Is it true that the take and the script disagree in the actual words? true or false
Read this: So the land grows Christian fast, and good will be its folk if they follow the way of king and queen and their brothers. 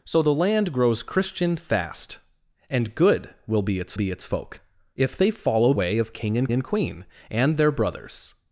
true